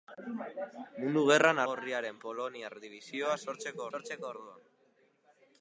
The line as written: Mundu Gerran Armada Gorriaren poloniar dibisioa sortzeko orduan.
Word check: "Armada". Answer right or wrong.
wrong